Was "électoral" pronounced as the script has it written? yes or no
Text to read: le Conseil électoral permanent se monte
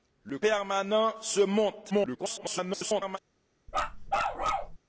no